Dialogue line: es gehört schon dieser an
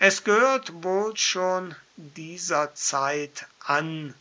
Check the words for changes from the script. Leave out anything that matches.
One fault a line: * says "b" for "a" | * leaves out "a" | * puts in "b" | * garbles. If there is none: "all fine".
* puts in "wohl"
* puts in "zeit"